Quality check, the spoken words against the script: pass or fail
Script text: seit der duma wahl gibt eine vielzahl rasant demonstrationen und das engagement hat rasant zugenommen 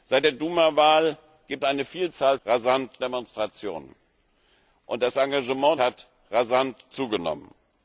pass